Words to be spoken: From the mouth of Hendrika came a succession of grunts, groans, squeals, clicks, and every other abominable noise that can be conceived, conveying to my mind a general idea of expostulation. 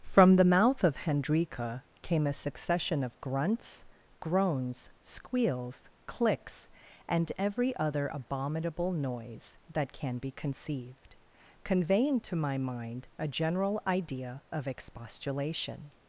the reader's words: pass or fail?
pass